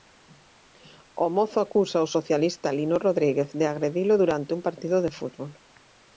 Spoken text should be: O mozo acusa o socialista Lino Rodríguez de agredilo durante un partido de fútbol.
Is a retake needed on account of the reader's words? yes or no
no